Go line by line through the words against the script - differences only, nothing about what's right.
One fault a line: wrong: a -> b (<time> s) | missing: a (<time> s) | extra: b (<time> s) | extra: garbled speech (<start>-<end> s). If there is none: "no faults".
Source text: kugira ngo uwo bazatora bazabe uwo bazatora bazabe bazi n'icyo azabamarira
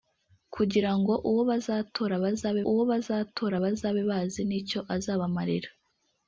no faults